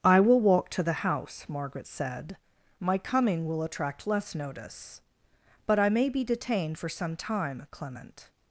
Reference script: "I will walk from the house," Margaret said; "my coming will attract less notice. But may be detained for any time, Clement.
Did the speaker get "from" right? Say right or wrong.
wrong